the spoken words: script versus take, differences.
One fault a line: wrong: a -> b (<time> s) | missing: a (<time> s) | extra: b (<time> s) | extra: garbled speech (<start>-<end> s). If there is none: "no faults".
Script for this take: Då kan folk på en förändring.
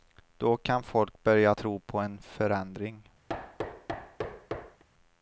extra: börja tro (1.2 s)